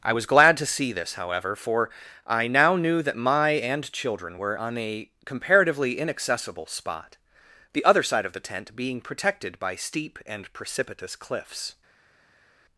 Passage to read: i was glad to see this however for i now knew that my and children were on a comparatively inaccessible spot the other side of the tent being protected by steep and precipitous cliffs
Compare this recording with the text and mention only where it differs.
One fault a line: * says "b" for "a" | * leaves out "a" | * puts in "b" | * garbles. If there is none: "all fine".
all fine